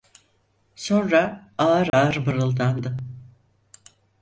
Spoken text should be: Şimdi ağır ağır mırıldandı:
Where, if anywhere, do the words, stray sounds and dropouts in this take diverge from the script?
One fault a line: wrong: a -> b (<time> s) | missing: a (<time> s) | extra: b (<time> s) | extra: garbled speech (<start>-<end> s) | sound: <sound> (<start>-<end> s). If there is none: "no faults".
wrong: Şimdi -> Sonra (0.8 s)
sound: dropout (1.9-1.9 s)